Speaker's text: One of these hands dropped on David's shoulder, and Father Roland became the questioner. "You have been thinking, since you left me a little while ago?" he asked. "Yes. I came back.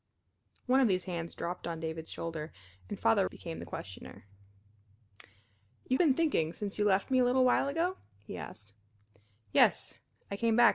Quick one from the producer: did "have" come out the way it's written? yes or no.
no